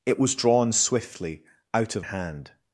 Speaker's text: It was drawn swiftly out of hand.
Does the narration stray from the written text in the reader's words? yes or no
no